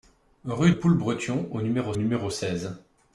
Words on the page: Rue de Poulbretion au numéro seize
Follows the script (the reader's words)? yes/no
no